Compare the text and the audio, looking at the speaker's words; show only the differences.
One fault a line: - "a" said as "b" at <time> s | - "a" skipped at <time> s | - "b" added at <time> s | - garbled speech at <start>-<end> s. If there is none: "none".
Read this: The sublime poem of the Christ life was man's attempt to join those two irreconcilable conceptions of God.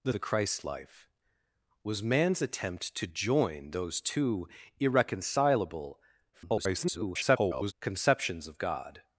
- "sublime poem of" skipped at 0.1 s
- garbled speech at 6.3-7.7 s